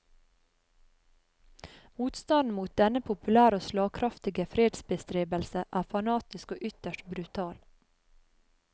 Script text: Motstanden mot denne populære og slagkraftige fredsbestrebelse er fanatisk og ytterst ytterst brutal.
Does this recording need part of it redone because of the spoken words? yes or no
yes